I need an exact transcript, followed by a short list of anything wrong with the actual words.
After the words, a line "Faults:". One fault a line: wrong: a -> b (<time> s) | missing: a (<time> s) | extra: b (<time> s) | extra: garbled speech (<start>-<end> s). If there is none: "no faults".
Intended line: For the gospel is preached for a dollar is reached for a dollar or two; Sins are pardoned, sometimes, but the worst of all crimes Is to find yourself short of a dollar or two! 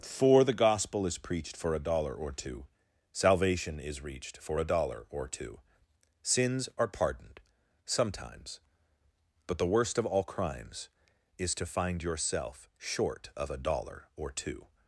For the gospel is preached for a dollar or two, Salvation is reached for a dollar or two; Sins are pardoned, sometimes, but the worst of all crimes Is to find yourself short of a dollar or two!
Faults:
extra: or two Salvation (2.1 s)